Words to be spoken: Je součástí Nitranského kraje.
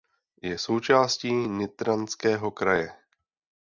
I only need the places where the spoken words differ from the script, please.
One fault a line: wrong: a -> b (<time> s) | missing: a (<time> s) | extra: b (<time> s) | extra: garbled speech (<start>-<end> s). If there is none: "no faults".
no faults